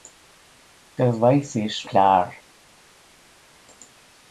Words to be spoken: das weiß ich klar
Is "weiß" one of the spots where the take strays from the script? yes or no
no